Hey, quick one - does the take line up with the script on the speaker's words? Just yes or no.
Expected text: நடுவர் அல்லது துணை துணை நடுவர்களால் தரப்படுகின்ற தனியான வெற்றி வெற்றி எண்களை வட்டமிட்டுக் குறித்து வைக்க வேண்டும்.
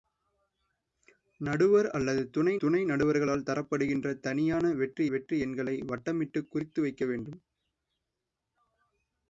yes